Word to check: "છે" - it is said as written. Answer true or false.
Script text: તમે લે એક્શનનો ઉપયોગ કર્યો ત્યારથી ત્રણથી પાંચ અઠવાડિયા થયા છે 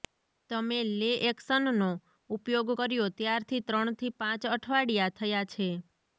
true